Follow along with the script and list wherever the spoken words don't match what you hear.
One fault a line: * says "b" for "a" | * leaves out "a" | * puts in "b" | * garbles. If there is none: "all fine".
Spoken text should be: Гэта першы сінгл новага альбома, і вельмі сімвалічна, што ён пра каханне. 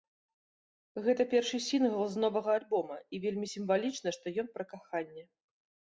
* puts in "з"